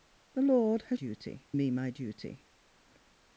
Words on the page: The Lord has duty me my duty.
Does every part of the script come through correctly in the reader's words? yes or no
yes